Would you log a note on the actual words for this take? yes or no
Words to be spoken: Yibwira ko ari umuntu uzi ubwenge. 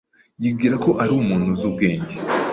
no